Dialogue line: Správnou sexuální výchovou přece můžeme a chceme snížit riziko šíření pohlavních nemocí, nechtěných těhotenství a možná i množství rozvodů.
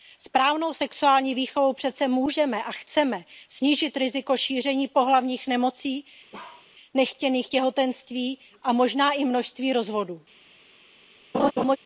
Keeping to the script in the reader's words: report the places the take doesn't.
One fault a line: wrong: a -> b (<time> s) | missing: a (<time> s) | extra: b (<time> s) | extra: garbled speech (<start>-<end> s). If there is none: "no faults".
no faults